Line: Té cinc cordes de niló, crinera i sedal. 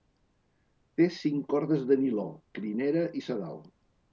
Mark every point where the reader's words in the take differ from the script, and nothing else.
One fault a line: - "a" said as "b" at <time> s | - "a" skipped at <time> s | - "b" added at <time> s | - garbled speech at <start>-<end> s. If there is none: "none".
none